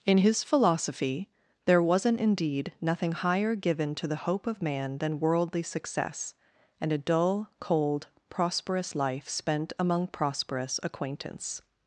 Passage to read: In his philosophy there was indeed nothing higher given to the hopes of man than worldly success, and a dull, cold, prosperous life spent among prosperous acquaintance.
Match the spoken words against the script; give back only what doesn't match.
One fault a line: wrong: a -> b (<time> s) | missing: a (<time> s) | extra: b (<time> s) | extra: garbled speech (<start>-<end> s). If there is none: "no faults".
wrong: was -> wasn't (1.8 s)
wrong: hopes -> hope (4.2 s)